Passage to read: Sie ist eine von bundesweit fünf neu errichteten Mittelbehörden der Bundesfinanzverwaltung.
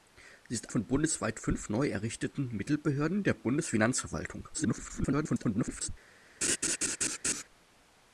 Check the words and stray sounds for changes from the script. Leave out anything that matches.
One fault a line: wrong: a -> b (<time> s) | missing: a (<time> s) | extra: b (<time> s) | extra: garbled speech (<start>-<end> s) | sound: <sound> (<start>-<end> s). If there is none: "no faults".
missing: eine (0.7 s)
extra: garbled speech (4.5-5.9 s)
sound: laugh (6.4-7.4 s)